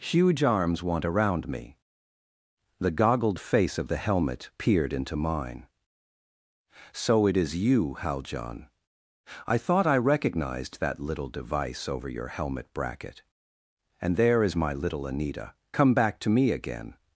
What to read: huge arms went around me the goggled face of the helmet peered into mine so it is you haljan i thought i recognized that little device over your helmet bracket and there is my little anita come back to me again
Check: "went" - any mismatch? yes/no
yes